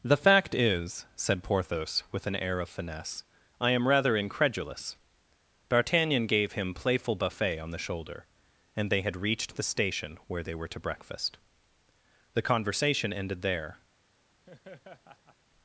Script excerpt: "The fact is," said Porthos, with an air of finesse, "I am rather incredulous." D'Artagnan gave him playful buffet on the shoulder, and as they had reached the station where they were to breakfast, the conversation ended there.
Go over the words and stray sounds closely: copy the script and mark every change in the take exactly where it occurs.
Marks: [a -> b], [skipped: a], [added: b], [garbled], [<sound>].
"The fact is," said Porthos, with an air of finesse, "I am rather incredulous." D'Artagnan gave him playful buffet on the shoulder, and [skipped: as] they had reached the station where they were to breakfast, the conversation ended there. [laugh]